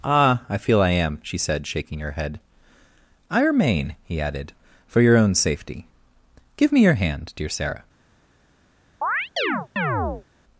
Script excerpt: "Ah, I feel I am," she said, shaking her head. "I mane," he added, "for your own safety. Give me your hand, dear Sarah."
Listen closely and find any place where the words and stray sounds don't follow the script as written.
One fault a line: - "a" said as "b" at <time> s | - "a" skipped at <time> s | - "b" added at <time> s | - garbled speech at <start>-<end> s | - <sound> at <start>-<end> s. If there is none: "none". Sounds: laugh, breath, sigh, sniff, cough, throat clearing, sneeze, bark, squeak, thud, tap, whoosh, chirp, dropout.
- "mane" said as "remain" at 3.4 s
- chirp at 9.0-10.2 s